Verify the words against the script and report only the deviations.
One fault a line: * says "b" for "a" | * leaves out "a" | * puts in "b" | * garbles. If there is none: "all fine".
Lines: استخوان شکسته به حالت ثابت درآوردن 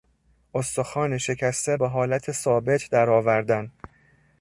all fine